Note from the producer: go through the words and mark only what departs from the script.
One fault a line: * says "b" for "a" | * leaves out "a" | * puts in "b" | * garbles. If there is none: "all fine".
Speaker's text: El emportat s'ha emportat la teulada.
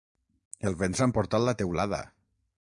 * says "vent" for "emportat"